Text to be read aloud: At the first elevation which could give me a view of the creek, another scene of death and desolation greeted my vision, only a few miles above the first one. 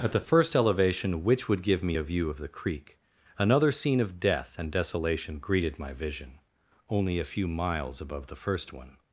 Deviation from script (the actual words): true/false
true